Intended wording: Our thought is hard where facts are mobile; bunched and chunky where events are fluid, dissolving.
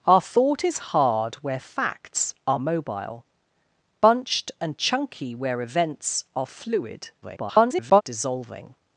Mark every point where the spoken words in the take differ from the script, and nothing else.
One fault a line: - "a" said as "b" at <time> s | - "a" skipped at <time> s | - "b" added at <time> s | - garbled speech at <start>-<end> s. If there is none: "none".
- garbled speech at 7.2-8.0 s